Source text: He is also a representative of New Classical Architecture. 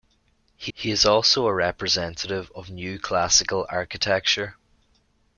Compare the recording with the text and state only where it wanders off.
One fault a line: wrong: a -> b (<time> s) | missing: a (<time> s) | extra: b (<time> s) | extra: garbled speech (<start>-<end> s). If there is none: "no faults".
extra: he (0.7 s)